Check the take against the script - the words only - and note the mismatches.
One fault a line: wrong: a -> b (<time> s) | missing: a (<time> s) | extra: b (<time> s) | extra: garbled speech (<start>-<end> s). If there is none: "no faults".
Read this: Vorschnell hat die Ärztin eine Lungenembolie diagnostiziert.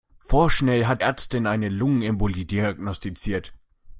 missing: die (1.0 s)